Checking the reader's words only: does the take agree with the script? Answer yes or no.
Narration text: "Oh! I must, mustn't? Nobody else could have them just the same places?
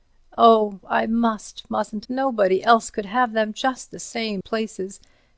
yes